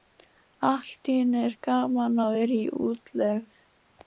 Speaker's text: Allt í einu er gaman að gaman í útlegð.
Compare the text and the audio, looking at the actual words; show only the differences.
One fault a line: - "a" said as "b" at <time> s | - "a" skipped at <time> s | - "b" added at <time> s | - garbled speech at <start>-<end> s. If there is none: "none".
- "gaman" said as "vera" at 2.4 s